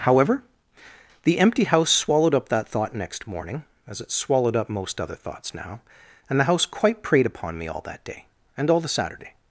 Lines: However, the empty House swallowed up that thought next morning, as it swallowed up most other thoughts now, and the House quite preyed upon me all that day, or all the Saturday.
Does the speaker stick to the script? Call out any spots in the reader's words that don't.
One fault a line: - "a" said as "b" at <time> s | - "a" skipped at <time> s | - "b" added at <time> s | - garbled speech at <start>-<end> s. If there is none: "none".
- "or" said as "and" at 8.6 s